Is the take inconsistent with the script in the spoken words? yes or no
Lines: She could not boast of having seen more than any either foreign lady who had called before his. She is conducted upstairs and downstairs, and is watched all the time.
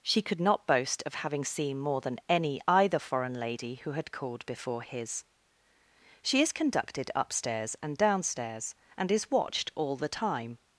no